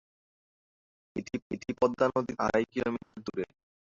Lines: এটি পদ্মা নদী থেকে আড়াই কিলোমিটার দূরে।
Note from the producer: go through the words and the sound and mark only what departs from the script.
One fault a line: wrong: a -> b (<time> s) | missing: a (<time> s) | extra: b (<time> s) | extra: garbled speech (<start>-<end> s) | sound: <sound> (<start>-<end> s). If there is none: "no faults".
extra: এটি (1.5 s)
missing: থেকে (2.3 s)
sound: dropout (3.0-3.1 s)